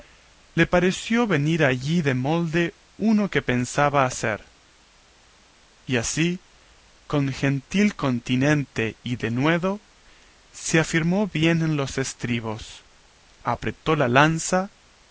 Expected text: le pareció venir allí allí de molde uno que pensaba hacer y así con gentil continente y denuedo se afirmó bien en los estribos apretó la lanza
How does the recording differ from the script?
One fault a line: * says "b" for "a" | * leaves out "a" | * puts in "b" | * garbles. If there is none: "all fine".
* leaves out "allí"